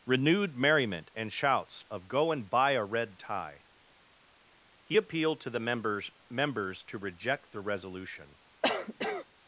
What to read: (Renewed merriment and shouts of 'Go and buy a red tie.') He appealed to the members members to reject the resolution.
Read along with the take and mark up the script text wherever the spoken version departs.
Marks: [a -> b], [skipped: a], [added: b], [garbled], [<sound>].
(Renewed merriment and shouts of 'Go and buy a red tie.') He appealed to the members members to reject the resolution. [cough]